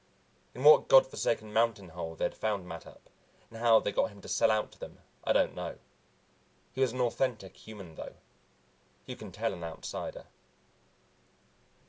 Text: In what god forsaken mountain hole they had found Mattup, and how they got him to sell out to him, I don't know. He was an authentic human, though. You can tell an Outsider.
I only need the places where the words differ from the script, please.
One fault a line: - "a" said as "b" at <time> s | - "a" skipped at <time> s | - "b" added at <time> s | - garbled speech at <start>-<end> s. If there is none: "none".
- "him" said as "them" at 4.8 s